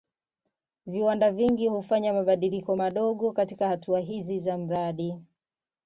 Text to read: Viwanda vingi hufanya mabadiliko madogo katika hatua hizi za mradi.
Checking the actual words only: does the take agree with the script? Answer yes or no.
yes